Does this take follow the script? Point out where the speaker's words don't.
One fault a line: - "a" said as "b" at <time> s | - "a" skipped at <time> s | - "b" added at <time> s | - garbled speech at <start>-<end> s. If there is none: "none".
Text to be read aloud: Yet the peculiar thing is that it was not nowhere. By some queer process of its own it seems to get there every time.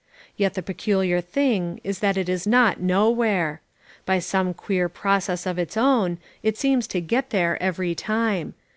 - "was" said as "is" at 2.3 s